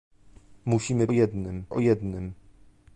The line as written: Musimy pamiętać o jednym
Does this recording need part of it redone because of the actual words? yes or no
yes